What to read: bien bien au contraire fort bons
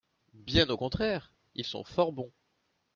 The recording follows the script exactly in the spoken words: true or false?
false